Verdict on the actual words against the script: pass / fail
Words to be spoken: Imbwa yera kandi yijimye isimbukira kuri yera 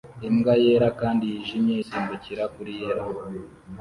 pass